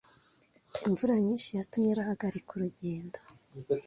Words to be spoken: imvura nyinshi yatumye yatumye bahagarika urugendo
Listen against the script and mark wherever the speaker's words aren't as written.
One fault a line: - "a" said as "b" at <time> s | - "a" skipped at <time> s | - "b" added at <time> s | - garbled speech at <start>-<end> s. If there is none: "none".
- "yatumye" skipped at 1.9 s